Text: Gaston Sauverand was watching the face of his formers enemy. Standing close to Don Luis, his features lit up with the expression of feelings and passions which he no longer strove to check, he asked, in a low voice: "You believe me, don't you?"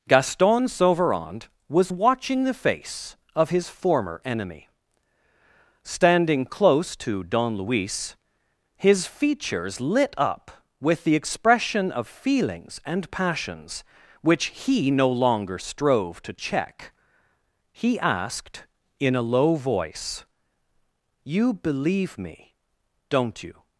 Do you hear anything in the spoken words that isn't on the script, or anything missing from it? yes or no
yes